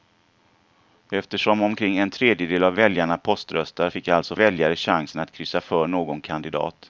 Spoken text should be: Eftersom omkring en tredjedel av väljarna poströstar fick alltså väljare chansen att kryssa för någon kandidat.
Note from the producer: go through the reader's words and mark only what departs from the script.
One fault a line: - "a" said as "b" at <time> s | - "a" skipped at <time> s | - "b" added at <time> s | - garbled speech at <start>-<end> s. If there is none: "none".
none